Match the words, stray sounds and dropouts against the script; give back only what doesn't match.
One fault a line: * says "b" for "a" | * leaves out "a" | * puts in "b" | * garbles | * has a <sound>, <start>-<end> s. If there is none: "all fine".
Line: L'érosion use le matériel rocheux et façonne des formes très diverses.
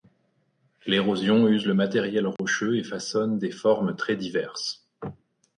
* has a dropout, 2.4-2.4 s